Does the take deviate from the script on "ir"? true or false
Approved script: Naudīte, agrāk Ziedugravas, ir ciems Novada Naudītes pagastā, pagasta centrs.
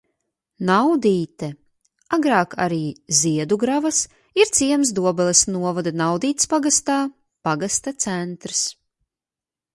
false